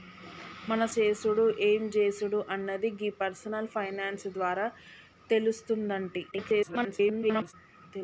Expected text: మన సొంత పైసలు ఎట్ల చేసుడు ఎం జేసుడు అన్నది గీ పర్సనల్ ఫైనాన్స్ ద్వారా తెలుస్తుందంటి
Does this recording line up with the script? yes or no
no